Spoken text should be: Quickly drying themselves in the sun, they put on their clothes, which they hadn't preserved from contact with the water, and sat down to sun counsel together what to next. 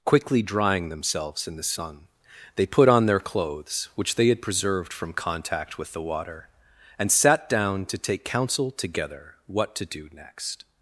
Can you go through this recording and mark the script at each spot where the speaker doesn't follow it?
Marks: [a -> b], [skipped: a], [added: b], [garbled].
Quickly drying themselves in the sun, they put on their clothes, which they [hadn't -> had] preserved from contact with the water, and sat down to [sun -> take] counsel together what to [added: do] next.